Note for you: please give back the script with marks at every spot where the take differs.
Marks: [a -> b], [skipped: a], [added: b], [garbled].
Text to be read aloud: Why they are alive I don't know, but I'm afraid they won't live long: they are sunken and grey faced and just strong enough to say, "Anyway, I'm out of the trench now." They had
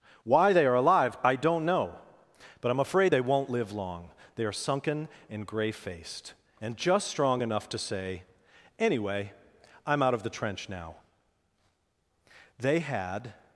Why they are alive I don't know, but I'm afraid they won't live long: they are sunken and grey faced and just strong enough to say, "Anyway, I'm out of the trench now." They had